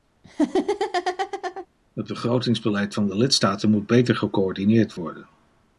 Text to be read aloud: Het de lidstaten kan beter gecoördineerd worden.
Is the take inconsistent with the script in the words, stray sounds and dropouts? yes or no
yes